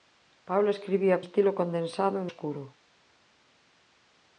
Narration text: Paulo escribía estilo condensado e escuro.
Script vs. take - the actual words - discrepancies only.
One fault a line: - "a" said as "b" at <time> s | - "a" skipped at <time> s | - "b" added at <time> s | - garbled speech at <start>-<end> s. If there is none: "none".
none